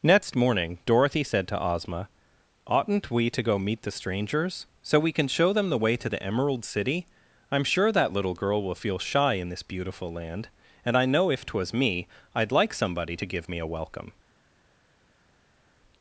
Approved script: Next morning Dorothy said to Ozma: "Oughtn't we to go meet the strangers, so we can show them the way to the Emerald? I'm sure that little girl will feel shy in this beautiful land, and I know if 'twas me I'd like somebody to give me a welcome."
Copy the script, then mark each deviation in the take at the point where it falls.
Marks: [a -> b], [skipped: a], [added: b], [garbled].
Next morning Dorothy said to Ozma: "Oughtn't we to go meet the strangers, so we can show them the way to the Emerald? [added: City] I'm sure that little girl will feel shy in this beautiful land, and I know if 'twas me I'd like somebody to give me a welcome."